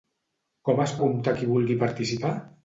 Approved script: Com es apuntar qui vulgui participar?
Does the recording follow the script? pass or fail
pass